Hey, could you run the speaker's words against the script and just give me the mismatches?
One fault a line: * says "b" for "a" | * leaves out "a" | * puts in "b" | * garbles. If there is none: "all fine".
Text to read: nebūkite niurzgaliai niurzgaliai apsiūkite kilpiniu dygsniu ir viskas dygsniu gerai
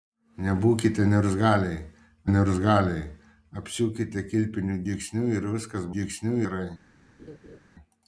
all fine